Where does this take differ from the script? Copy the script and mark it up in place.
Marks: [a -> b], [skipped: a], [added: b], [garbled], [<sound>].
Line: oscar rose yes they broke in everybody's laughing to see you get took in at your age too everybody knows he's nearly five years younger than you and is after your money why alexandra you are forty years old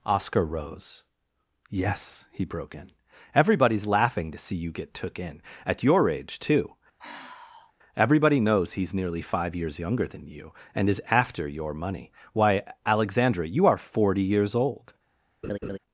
oscar rose yes [they -> he] broke in everybody's laughing to see you get took in at your age too [sigh] everybody knows he's nearly five years younger than you and is after your money why alexandra you are forty years old [laugh]